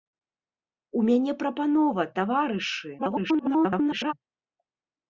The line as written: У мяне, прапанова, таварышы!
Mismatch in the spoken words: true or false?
true